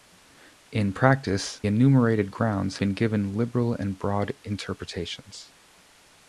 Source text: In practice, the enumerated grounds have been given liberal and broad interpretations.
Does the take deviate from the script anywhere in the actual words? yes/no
yes